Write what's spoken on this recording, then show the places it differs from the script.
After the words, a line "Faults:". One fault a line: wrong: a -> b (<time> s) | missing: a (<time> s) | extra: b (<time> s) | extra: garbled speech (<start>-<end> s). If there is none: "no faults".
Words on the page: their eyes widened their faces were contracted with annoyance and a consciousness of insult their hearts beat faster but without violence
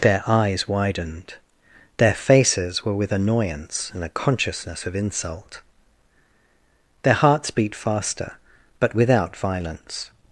their eyes widened their faces were with annoyance and a consciousness of insult their hearts beat faster but without violence
Faults:
missing: contracted (3.0 s)